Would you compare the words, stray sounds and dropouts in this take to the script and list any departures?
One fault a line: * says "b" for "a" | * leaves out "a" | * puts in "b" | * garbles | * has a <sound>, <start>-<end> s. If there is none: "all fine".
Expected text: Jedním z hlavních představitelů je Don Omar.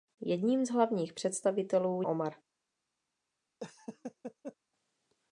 * leaves out "je Don"
* has a laugh, 3.6-4.6 s